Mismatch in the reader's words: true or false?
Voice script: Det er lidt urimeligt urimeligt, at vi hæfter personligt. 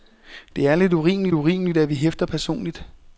false